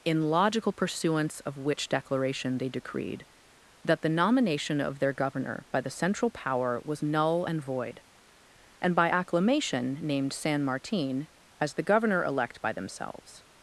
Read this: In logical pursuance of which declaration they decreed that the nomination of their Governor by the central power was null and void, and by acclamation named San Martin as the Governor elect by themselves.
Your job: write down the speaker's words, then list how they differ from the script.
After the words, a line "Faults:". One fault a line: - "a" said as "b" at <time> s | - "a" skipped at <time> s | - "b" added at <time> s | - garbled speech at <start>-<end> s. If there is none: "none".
In logical pursuance of which declaration they decreed that the nomination of their Governor by the central power was null and void, and by acclamation named San Martin as the Governor elect by themselves.
Faults:
none